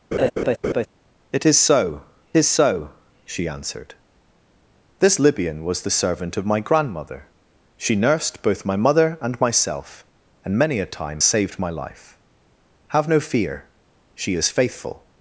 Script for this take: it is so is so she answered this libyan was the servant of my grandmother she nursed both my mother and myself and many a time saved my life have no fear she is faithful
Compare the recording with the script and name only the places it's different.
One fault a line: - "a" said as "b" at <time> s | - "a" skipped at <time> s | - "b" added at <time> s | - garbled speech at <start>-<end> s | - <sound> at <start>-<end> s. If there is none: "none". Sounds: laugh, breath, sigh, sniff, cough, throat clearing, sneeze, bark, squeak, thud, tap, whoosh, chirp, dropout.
- laugh at 0.1-0.9 s